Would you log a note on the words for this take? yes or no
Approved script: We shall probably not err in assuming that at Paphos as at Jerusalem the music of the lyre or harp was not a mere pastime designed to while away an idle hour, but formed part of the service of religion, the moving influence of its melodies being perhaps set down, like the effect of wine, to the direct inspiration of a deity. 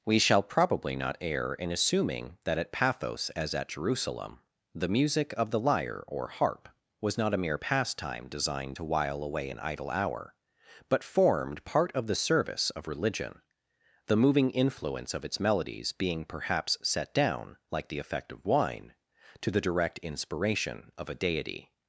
no